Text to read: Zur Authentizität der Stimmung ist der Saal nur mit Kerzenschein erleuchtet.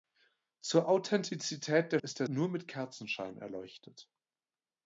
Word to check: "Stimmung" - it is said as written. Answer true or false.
false